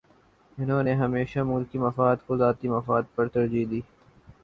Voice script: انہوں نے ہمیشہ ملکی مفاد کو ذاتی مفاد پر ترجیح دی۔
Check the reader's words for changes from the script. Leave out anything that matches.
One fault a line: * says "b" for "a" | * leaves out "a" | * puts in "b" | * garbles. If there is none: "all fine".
all fine